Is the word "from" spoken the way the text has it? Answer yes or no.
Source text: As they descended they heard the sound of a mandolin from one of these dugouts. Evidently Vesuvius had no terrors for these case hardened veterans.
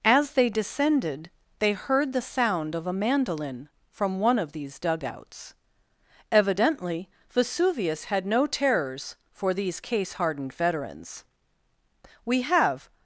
yes